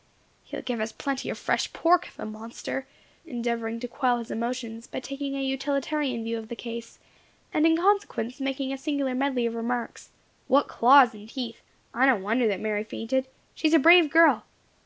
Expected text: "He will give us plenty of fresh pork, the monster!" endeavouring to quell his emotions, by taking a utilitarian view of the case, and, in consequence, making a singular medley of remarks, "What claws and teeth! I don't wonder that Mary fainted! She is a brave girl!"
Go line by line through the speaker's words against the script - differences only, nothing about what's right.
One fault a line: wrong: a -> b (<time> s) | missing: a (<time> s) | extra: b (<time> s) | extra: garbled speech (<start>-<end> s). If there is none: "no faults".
no faults